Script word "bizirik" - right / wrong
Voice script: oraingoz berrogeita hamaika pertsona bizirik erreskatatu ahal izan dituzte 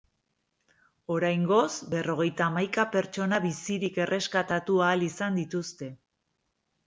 right